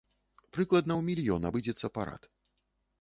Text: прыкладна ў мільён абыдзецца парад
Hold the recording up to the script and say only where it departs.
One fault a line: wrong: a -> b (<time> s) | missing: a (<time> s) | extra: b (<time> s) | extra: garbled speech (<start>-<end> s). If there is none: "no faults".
no faults